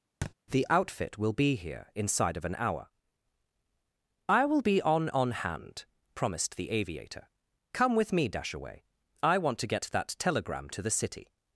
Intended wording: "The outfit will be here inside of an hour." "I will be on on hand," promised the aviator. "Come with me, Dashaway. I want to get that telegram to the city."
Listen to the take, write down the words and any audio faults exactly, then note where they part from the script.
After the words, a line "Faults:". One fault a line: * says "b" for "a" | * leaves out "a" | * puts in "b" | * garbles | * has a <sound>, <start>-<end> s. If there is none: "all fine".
"The outfit will be here inside of an hour." "I will be on on hand," promised the aviator. "Come with me, Dashaway. I want to get that telegram to the city."
Faults:
* has a thud, 0.2-0.3 s